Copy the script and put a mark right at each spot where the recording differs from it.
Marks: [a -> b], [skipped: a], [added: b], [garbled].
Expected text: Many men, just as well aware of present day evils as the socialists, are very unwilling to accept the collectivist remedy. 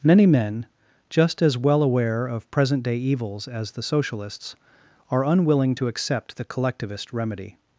Many men, just as well aware of present day evils as the socialists, are [skipped: very] unwilling to accept the collectivist remedy.